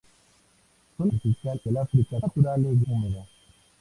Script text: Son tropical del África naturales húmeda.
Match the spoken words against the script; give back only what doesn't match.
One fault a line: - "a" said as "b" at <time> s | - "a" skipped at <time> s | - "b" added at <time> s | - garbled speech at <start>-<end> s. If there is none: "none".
none